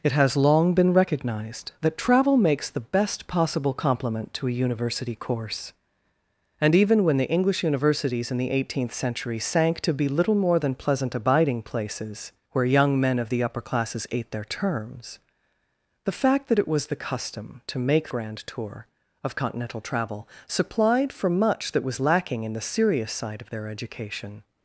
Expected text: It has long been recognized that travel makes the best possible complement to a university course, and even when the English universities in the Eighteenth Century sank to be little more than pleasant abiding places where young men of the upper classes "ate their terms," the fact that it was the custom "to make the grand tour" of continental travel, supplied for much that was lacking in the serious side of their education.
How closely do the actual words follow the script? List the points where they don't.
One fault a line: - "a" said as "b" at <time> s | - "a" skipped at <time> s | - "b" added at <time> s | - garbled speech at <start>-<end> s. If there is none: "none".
- "the" skipped at 18.1 s